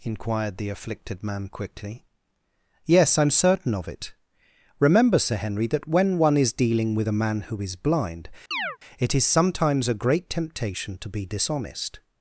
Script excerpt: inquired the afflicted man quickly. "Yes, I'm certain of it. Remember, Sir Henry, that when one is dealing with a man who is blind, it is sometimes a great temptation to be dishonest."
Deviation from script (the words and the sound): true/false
true